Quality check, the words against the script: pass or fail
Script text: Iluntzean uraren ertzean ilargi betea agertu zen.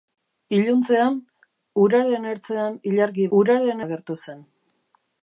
fail